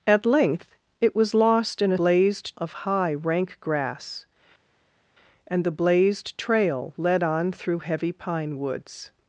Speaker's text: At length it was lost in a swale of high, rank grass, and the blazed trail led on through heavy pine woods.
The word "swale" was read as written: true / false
false